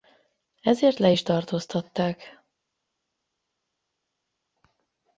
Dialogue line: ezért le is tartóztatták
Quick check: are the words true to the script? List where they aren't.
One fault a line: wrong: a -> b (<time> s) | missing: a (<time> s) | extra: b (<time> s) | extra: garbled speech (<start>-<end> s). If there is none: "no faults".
no faults